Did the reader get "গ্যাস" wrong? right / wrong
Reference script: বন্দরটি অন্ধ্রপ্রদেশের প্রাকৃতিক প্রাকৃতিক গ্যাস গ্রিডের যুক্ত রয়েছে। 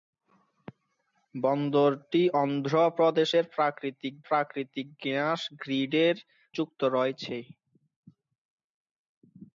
right